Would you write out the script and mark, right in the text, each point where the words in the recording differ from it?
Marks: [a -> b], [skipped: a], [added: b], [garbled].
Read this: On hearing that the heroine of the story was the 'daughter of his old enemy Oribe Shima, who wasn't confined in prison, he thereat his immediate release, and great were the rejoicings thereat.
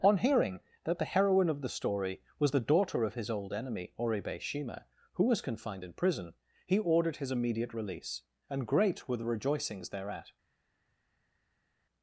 On hearing that the heroine of the story was the 'daughter of his old enemy Oribe Shima, who [wasn't -> was] confined in prison, he [thereat -> ordered] his immediate release, and great were the rejoicings thereat.